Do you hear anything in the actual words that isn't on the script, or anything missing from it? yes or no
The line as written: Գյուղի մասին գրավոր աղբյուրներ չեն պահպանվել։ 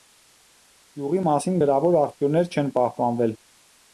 no